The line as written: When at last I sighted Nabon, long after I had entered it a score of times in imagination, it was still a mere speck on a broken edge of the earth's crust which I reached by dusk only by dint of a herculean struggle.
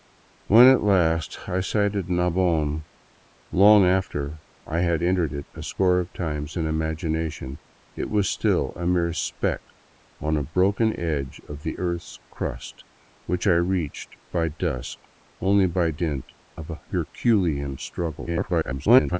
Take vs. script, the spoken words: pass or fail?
fail